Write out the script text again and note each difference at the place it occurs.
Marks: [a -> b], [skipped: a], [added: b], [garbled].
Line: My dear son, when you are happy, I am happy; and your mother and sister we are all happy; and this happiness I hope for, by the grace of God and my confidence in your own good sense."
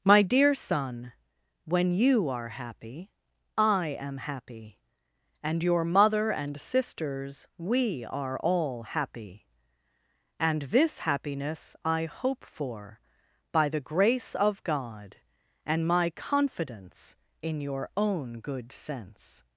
My dear son, when you are happy, I am happy; and your mother and [sister -> sisters] we are all happy; and this happiness I hope for, by the grace of God and my confidence in your own good sense."